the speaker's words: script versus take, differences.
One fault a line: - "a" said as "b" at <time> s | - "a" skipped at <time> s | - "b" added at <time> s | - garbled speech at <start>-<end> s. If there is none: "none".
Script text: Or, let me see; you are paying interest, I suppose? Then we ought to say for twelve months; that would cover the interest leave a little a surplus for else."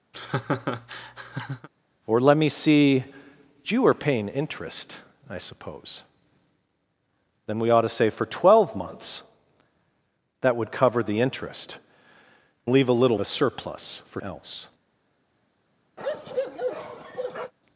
none